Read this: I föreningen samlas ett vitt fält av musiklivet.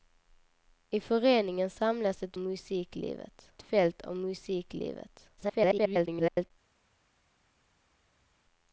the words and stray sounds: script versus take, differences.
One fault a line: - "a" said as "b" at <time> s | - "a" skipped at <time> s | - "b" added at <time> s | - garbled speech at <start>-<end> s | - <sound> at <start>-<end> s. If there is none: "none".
- "vitt" said as "musiklivet" at 2.4 s
- garbled speech at 5.4-6.5 s